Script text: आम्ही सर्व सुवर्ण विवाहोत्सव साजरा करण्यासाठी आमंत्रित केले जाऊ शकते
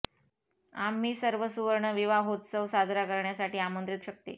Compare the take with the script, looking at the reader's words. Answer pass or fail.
fail